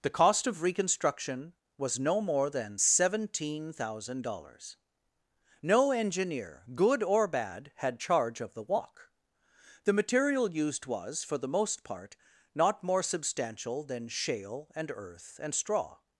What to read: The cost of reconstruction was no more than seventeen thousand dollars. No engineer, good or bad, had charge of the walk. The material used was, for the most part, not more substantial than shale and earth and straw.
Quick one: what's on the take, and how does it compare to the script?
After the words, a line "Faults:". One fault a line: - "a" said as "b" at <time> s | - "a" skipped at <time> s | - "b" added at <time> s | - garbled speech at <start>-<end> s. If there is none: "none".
The cost of reconstruction was no more than seventeen thousand dollars. No engineer, good or bad, had charge of the walk. The material used was, for the most part, not more substantial than shale and earth and straw.
Faults:
none